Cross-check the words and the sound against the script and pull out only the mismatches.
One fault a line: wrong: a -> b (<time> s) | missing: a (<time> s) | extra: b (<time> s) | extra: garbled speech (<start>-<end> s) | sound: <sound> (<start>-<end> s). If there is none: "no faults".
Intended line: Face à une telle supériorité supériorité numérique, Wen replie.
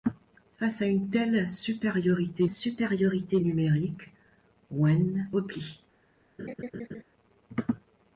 sound: laugh (6.4-7.0 s)